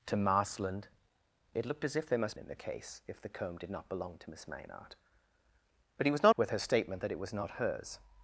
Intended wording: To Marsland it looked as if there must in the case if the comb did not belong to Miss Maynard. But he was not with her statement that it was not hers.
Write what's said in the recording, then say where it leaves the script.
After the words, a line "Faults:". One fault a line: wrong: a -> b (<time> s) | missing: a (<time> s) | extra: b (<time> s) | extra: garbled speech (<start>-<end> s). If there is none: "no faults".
To Marsland it looked as if there must in the case if the comb did not belong to Miss Maynard. But he was not with her statement that it was not hers.
Faults:
no faults